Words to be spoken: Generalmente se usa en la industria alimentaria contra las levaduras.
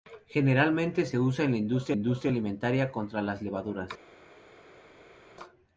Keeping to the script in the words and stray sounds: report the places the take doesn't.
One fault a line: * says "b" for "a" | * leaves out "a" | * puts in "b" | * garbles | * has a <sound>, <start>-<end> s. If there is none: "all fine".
* puts in "industria"